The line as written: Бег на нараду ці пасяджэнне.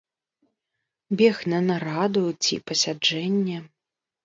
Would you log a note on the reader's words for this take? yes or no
no